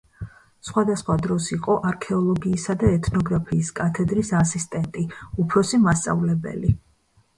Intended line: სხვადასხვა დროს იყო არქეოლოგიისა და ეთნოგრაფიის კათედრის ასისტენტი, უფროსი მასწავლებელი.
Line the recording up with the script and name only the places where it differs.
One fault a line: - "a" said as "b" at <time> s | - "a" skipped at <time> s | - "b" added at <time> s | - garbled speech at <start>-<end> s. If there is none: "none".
none